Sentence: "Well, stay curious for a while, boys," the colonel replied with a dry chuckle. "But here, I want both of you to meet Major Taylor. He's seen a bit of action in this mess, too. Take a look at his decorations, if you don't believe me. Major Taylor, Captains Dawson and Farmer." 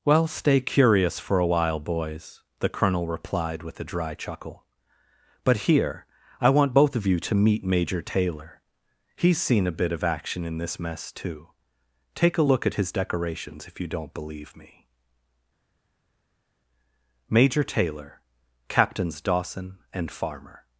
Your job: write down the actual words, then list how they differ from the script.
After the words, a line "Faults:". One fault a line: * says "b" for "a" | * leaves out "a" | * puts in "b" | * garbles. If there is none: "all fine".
"Well, stay curious for a while, boys," the colonel replied with a dry chuckle. "But here, I want both of you to meet Major Taylor. He's seen a bit of action in this mess, too. Take a look at his decorations, if you don't believe me. Major Taylor, Captains Dawson and Farmer."
Faults:
all fine